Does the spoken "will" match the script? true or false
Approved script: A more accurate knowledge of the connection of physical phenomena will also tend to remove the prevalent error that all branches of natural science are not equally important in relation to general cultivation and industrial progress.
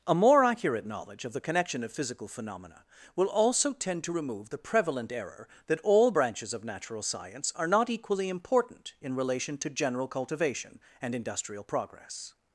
true